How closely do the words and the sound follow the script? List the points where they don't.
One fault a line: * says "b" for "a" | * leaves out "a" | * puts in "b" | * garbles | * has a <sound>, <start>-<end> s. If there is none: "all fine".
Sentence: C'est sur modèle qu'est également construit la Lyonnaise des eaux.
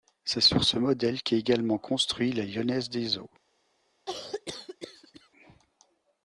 * puts in "ce"
* has a cough, 4.1-5.3 s